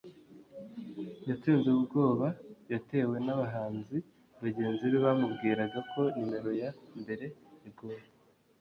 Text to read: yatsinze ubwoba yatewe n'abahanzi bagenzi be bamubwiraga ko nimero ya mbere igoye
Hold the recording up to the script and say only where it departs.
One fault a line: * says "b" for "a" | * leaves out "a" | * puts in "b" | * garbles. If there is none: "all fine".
all fine